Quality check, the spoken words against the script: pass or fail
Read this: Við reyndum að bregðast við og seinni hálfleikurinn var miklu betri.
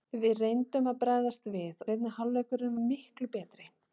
fail